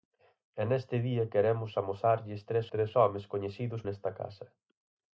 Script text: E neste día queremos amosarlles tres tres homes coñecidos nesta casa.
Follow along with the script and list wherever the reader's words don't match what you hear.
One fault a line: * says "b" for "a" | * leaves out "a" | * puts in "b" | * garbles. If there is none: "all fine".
all fine